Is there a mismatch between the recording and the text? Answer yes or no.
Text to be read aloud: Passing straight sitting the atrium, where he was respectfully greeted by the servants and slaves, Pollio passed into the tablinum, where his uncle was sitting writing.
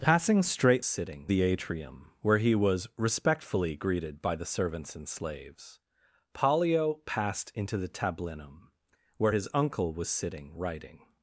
no